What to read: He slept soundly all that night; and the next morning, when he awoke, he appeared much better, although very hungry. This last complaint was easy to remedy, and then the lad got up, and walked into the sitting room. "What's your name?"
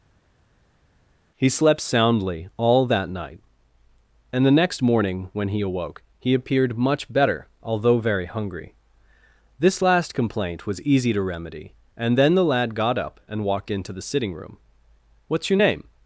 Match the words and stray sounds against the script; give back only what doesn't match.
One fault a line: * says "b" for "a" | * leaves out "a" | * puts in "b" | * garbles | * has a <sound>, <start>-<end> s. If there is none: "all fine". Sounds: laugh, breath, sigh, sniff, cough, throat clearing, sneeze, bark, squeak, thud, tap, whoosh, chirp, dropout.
all fine